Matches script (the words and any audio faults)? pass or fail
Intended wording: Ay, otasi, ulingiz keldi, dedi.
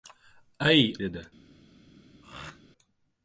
fail